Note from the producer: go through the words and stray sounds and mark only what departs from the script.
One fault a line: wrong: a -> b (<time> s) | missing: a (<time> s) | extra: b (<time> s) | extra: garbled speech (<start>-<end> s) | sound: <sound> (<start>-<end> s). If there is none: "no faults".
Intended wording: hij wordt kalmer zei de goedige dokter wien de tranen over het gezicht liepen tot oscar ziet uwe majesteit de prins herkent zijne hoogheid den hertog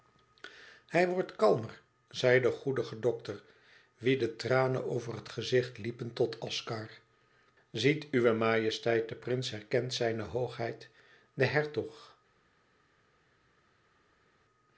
no faults